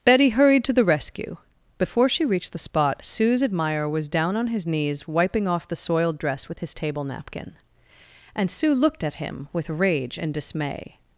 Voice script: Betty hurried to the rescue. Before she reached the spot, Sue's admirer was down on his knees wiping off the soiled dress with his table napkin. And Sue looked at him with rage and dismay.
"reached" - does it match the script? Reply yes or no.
yes